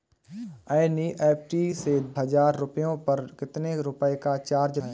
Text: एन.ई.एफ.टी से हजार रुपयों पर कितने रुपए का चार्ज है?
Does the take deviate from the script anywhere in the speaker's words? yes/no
no